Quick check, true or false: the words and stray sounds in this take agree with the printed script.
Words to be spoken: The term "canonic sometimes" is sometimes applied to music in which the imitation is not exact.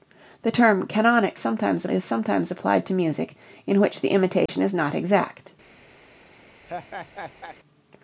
false